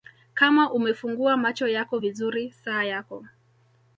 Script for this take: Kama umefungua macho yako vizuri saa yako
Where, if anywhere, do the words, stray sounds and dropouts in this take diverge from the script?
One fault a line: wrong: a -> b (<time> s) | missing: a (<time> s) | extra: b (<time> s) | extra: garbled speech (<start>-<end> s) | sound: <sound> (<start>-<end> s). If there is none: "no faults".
no faults